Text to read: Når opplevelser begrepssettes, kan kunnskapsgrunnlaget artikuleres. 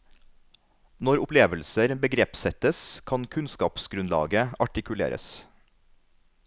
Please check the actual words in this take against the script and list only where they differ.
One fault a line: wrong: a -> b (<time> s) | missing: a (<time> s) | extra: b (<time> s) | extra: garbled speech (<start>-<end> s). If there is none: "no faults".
no faults